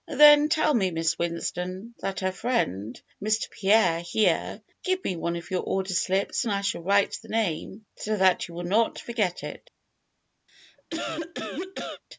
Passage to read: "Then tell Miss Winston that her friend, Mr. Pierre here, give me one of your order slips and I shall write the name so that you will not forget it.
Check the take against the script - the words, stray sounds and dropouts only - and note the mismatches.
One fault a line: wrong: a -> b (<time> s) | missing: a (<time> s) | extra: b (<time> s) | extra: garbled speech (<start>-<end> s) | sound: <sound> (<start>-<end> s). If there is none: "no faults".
sound: cough (10.5-12.0 s)